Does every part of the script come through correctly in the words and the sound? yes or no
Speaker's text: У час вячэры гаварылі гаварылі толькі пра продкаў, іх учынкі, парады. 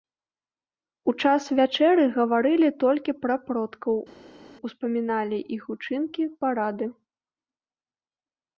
no